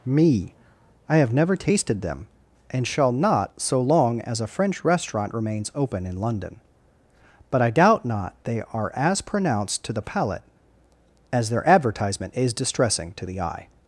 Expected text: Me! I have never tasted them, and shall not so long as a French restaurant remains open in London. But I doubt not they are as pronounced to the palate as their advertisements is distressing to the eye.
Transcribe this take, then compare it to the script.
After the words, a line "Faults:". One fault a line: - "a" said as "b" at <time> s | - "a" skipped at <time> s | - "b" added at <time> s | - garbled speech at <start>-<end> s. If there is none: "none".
Me! I have never tasted them, and shall not so long as a French restaurant remains open in London. But I doubt not they are as pronounced to the palate as their advertisement is distressing to the eye.
Faults:
- "advertisements" said as "advertisement" at 11.7 s